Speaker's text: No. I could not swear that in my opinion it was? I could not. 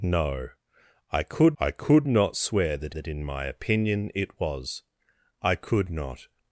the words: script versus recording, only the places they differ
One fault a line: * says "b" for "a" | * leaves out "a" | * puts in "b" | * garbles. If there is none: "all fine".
* puts in "I could"
* puts in "that"